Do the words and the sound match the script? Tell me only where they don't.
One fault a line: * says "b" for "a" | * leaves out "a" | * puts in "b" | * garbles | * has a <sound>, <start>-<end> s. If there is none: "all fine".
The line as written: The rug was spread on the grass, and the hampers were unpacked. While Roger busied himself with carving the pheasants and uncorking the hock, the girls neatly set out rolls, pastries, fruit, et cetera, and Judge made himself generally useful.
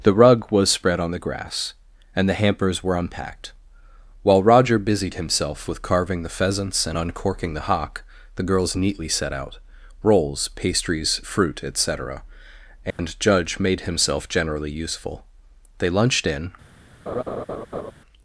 * has a dropout, 12.9-13.0 s
* puts in "They lunched in"
* has a laugh, 17.1-17.9 s